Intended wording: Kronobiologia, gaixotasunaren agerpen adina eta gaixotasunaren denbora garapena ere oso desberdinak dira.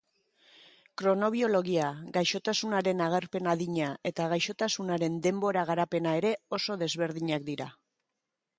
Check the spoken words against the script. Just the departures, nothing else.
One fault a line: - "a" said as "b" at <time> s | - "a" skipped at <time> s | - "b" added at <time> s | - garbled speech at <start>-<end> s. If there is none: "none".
none